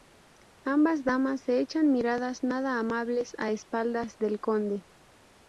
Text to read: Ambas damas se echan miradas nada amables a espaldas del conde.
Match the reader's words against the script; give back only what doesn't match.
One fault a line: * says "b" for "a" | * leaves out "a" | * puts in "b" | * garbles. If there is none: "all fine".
all fine